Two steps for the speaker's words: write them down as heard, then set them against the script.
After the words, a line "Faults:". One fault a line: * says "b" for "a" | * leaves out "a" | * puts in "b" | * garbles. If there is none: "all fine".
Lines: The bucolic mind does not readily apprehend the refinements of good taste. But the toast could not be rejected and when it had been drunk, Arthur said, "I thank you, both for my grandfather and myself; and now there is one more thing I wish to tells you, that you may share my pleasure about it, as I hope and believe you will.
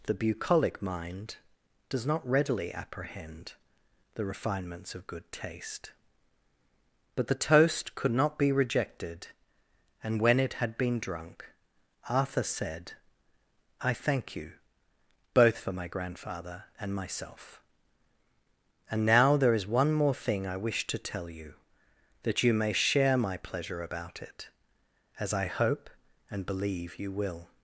The bucolic mind does not readily apprehend the refinements of good taste. But the toast could not be rejected and when it had been drunk, Arthur said, "I thank you, both for my grandfather and myself; and now there is one more thing I wish to tell you, that you may share my pleasure about it, as I hope and believe you will.
Faults:
* says "tell" for "tells"